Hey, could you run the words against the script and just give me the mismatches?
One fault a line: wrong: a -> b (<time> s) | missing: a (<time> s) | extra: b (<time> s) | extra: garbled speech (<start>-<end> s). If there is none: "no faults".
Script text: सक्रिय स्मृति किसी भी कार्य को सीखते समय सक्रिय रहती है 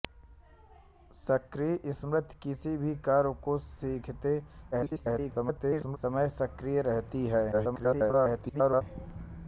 extra: garbled speech (4.7-6.0 s)
extra: garbled speech (7.5-8.8 s)